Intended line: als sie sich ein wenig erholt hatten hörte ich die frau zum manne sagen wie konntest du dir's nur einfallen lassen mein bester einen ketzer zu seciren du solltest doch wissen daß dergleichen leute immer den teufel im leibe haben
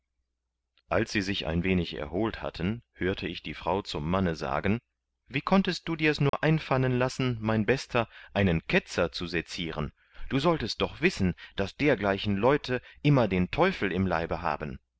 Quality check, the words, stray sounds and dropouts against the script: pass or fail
fail